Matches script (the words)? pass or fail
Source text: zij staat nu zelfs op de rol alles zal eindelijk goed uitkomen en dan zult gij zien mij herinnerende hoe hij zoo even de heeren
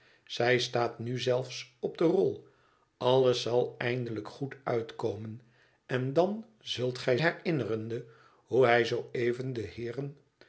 fail